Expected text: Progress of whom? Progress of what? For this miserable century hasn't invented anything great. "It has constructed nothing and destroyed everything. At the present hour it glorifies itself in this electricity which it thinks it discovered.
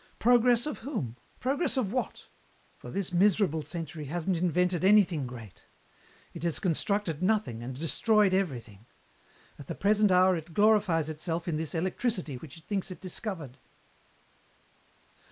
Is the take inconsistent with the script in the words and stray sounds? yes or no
no